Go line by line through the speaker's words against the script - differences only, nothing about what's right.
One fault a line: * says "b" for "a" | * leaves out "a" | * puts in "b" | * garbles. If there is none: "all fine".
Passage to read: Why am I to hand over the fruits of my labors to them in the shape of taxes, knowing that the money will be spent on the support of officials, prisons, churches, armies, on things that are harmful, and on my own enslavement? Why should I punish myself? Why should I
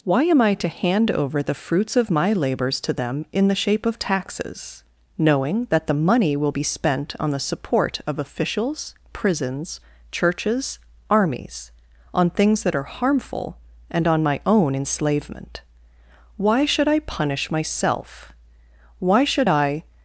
all fine